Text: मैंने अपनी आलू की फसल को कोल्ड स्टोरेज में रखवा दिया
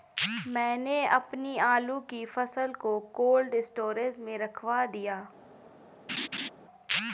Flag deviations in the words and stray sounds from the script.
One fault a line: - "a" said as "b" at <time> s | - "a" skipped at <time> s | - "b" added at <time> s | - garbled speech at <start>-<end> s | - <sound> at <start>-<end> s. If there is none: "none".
- laugh at 6.1-6.5 s